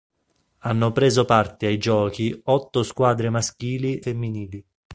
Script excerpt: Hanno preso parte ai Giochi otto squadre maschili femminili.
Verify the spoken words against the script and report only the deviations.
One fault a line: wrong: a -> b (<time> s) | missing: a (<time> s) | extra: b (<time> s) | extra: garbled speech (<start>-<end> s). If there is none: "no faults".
no faults